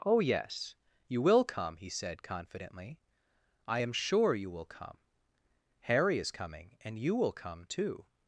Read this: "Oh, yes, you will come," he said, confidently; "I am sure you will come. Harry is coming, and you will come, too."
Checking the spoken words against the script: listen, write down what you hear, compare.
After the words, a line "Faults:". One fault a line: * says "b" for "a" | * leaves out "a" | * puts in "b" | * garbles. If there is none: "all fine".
"Oh, yes, you will come," he said, confidently; "I am sure you will come. Harry is coming, and you will come, too."
Faults:
all fine